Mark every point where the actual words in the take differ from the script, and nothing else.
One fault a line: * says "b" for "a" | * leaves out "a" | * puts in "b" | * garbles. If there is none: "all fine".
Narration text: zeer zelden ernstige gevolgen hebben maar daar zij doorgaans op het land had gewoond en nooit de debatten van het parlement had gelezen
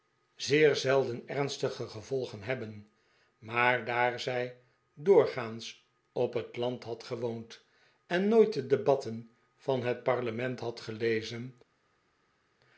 all fine